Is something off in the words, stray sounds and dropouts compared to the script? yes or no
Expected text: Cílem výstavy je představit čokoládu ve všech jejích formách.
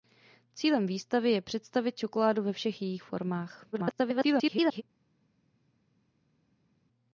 yes